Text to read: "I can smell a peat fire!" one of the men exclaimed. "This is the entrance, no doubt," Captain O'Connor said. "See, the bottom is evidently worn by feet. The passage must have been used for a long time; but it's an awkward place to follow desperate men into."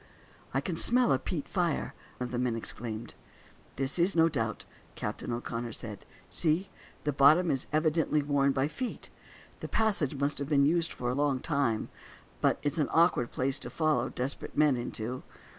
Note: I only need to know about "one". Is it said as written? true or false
false